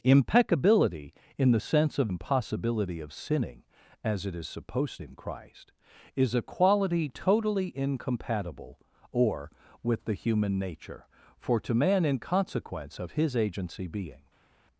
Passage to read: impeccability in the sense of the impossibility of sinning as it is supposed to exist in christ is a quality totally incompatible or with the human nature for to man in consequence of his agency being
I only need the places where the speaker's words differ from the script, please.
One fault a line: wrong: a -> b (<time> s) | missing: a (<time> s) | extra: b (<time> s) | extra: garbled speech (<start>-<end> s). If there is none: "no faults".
missing: the (2.1 s)
missing: to exist (5.0 s)